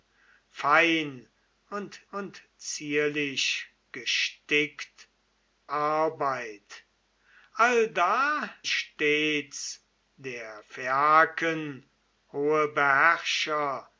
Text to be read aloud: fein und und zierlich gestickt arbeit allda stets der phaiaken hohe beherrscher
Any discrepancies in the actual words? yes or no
no